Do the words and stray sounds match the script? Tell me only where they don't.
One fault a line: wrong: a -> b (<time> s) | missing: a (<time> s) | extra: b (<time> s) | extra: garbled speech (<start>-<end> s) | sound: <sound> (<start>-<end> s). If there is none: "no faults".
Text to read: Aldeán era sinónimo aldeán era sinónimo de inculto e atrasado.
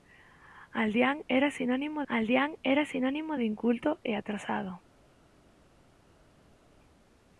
no faults